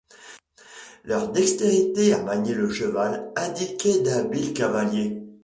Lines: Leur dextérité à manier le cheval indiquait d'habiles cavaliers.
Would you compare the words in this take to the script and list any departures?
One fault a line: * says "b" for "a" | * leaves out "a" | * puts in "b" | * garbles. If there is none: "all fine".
all fine